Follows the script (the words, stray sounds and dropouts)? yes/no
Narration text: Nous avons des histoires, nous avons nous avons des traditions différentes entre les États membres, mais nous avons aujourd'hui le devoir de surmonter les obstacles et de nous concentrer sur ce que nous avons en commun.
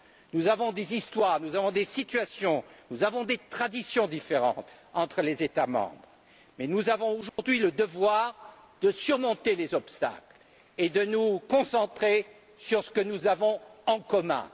no